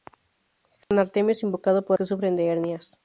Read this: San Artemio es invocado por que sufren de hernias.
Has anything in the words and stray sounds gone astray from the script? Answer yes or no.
yes